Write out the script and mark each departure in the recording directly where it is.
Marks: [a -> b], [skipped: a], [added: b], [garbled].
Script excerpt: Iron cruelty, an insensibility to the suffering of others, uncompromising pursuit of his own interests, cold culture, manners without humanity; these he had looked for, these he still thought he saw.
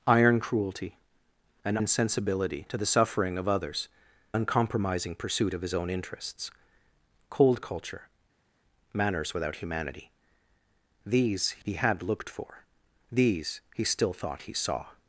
Iron cruelty, an insensibility to the suffering of others, uncompromising pursuit of his own interests, cold culture, manners without humanity; these he had looked for, these he still thought he saw.